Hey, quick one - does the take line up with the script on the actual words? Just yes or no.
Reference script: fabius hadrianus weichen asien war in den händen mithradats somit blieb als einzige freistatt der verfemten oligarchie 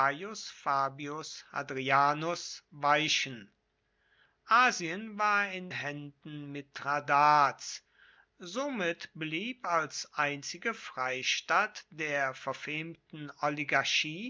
no